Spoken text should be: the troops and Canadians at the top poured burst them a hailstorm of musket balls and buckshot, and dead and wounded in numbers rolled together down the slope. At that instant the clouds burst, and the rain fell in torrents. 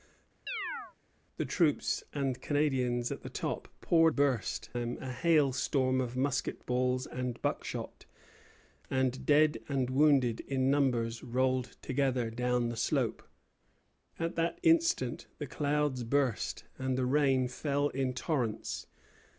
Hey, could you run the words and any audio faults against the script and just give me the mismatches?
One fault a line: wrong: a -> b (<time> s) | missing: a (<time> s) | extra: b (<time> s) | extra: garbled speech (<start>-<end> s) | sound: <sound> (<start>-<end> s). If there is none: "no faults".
sound: chirp (0.5-0.9 s)